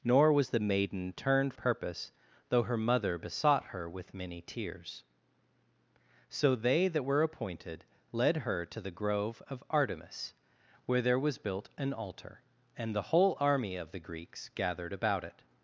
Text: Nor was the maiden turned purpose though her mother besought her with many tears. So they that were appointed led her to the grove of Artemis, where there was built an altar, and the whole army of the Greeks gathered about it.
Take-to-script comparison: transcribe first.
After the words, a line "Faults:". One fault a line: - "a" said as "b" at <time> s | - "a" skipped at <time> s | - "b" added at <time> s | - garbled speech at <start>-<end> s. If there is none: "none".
Nor was the maiden turned purpose though her mother besought her with many tears. So they that were appointed led her to the grove of Artemis, where there was built an altar, and the whole army of the Greeks gathered about it.
Faults:
none